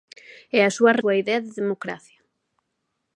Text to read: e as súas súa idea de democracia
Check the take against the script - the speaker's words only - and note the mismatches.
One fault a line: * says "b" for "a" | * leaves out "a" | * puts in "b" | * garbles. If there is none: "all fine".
all fine